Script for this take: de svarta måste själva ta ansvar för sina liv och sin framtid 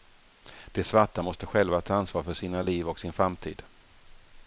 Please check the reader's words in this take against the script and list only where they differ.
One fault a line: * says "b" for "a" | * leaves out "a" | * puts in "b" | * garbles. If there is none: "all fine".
all fine